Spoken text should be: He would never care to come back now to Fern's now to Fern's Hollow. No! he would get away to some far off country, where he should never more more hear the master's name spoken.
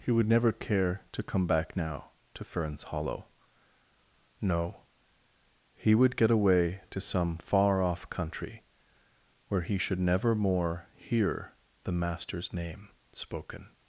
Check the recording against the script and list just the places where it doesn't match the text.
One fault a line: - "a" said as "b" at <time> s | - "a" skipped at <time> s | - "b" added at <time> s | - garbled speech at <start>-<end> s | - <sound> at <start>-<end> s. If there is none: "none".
- "now to Fern's" skipped at 2.8 s
- "more" skipped at 10.9 s